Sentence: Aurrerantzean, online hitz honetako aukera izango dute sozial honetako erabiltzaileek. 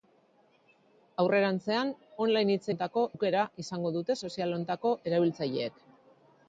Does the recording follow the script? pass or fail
pass